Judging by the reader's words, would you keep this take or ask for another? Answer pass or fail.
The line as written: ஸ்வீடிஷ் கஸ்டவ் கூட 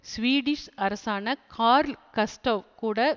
fail